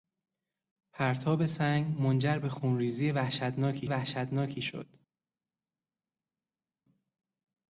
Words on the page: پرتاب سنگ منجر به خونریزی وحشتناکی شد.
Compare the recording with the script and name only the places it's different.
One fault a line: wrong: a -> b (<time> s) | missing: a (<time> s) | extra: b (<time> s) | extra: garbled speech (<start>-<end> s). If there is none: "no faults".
extra: وحشتناکی (3.9 s)